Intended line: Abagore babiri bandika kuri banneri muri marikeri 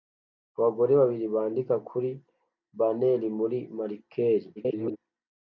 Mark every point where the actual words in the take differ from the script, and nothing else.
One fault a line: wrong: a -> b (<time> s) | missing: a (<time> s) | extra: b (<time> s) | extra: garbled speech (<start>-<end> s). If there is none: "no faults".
extra: garbled speech (4.6-5.0 s)